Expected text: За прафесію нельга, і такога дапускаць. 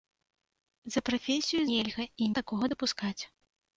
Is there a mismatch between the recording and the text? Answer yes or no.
no